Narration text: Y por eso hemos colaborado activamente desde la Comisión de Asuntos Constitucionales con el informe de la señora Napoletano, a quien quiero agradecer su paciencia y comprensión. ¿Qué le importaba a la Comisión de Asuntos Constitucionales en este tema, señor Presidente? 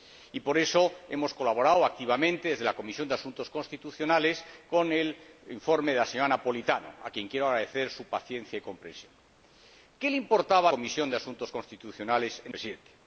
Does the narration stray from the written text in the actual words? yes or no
yes